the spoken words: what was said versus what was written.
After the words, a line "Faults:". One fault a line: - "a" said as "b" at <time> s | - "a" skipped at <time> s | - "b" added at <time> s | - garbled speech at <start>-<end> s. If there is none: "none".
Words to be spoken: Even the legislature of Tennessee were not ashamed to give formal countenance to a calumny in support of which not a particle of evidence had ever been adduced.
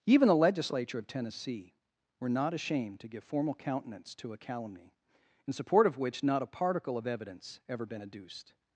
Even the legislature of Tennessee were not ashamed to give formal countenance to a calumny in support of which not a particle of evidence ever been adduced.
Faults:
- "had" skipped at 7.6 s